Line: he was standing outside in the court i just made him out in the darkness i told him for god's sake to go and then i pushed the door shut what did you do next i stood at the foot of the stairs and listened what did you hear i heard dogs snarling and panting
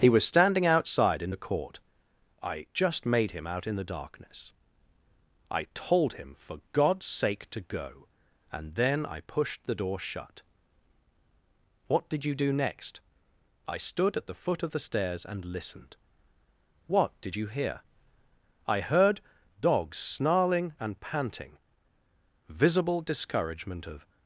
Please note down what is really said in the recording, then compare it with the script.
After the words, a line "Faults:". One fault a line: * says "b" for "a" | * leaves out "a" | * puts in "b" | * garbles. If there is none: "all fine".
he was standing outside in the court i just made him out in the darkness i told him for god's sake to go and then i pushed the door shut what did you do next i stood at the foot of the stairs and listened what did you hear i heard dogs snarling and panting visible discouragement of
Faults:
* puts in "visible discouragement of"